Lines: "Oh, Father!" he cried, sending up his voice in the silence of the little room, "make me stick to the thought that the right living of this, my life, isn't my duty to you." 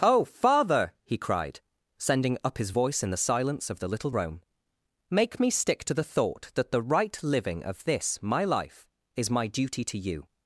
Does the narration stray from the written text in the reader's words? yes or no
yes